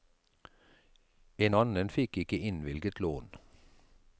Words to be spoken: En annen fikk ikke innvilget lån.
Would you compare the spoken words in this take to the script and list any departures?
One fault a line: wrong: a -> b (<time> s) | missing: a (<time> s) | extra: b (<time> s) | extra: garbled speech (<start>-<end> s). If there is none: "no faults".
no faults